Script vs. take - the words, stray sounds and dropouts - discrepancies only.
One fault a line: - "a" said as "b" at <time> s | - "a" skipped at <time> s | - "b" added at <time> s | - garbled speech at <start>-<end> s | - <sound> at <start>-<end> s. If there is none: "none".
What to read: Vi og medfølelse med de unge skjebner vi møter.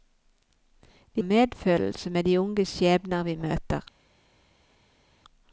none